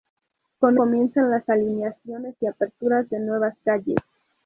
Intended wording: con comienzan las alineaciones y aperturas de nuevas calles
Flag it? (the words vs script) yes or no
no